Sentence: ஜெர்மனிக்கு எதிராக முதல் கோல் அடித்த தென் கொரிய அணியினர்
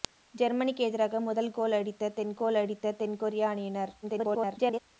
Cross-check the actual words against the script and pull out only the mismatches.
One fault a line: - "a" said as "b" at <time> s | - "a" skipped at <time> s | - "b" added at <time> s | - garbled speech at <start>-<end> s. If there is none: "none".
- "கோல் அடித்த தென்" added at 2.3 s
- garbled speech at 4.0-4.8 s